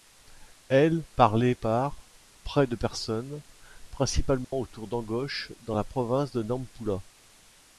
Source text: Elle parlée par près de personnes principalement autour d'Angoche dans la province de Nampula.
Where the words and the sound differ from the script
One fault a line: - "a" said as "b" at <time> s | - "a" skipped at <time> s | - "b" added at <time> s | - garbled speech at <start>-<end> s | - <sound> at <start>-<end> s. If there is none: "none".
- dropout at 4.4-4.5 s